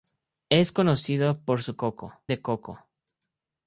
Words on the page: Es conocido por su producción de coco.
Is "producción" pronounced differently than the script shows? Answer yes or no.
yes